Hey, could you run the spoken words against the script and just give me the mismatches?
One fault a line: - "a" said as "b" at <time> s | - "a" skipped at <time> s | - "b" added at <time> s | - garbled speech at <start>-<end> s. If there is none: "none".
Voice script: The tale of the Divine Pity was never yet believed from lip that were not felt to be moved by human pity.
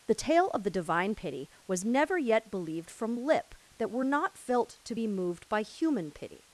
none